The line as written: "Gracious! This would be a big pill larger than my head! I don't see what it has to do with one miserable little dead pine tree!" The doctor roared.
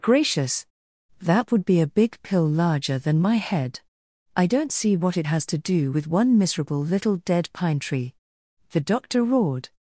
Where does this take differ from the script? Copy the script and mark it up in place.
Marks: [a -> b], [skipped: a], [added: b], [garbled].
"Gracious! [This -> That] would be a big pill larger than my head! I don't see what it has to do with one miserable little dead pine tree!" The doctor roared.